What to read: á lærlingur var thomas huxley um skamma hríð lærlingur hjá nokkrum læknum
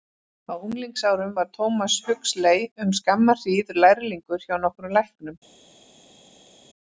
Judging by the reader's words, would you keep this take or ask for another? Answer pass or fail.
fail